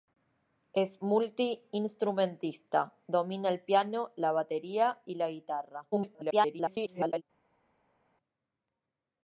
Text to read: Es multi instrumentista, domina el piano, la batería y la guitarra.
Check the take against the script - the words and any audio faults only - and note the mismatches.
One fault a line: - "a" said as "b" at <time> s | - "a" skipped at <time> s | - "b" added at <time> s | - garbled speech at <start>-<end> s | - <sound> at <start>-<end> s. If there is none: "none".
- garbled speech at 5.9-7.2 s